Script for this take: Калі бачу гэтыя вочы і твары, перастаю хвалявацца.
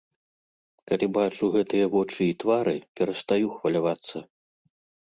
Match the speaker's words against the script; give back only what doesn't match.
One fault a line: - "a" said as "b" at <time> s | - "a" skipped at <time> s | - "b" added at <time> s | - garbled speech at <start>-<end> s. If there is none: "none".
none